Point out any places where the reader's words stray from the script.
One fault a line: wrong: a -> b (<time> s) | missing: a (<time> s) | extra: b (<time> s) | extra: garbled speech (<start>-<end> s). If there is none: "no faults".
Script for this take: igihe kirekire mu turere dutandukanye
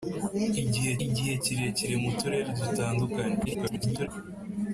extra: igihe (1.0 s)
extra: garbled speech (3.4-4.1 s)